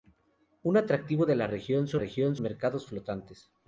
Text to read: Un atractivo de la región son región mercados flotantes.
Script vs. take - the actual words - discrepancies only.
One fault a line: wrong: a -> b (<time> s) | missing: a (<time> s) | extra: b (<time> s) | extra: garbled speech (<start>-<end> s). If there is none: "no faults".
no faults